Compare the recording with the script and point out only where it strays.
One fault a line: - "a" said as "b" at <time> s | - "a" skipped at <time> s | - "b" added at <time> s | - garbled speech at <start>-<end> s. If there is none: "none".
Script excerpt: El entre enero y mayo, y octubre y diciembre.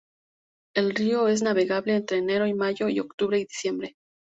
- "río es navegable" added at 0.9 s